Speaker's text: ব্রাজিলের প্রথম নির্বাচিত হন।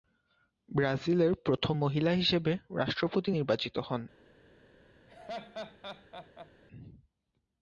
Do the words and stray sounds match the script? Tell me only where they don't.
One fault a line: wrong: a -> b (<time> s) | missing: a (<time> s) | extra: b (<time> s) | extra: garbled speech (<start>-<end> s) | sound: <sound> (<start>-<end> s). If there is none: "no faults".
extra: মহিলা হিসেবে রাষ্ট্রপতি (1.8 s)
sound: laugh (5.1-6.5 s)